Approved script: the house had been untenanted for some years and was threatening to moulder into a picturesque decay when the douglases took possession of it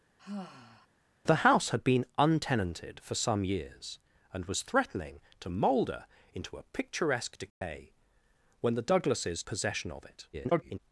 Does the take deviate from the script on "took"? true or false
true